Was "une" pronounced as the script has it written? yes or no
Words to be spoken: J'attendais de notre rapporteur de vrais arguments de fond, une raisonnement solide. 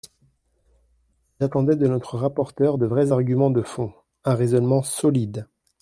no